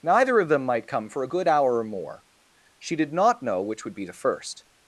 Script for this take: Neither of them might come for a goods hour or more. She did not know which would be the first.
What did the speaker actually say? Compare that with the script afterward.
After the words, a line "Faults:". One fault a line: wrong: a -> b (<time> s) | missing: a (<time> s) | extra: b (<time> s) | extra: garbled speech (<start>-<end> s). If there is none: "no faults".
Neither of them might come for a good hour or more. She did not know which would be the first.
Faults:
wrong: goods -> good (1.2 s)